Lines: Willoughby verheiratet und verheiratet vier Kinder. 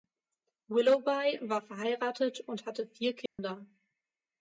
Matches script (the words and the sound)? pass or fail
fail